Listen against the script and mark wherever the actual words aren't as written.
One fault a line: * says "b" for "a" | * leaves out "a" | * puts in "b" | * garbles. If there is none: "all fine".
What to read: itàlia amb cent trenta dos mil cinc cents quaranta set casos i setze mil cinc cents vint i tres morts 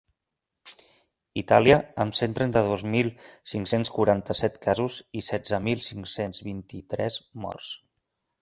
all fine